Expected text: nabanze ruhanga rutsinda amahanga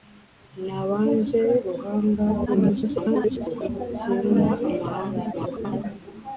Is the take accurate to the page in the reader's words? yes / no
no